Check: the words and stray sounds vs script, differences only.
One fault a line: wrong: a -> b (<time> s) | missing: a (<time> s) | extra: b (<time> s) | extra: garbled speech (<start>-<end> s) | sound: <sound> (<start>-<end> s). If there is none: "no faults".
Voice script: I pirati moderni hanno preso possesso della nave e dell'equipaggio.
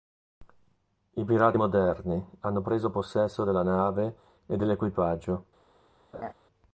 sound: laugh (6.1-6.3 s)